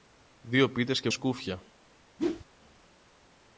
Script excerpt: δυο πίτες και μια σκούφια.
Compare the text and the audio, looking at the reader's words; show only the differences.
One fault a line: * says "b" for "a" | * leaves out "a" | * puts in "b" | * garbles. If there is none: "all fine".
* leaves out "μια"